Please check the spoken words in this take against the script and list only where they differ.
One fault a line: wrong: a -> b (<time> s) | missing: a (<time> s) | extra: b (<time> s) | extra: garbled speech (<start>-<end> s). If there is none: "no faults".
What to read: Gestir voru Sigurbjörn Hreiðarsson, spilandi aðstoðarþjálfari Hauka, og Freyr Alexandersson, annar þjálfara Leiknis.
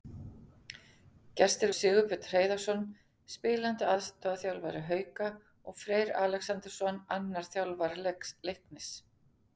missing: voru (1.7 s)